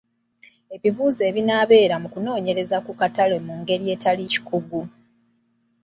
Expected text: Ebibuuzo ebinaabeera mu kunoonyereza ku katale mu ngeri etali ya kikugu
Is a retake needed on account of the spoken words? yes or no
yes